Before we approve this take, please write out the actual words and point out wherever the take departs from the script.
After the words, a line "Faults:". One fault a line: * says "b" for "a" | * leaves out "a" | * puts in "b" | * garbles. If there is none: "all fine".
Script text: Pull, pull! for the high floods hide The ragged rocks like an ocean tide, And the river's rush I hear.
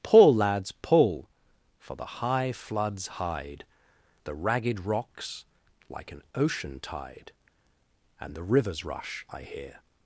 Pull, lads, pull! for the high floods hide The ragged rocks like an ocean tide, And the river's rush I hear.
Faults:
* puts in "lads"